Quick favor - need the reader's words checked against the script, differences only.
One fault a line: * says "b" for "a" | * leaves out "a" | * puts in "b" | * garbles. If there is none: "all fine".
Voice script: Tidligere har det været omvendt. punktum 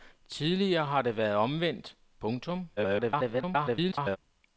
* garbles